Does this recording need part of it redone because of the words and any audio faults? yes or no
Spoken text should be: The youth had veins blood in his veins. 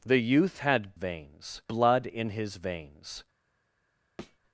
yes